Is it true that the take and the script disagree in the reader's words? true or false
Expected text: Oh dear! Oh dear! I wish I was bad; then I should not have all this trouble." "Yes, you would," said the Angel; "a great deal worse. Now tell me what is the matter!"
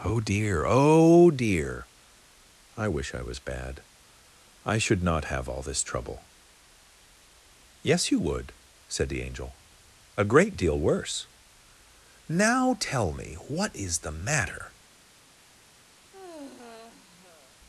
true